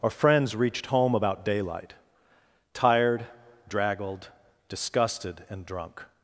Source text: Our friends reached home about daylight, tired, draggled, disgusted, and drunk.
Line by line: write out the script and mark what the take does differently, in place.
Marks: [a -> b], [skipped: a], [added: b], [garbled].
Our friends reached home about daylight, tired, draggled, disgusted, and drunk.